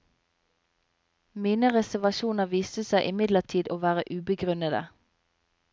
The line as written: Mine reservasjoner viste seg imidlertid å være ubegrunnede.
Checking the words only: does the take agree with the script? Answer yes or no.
yes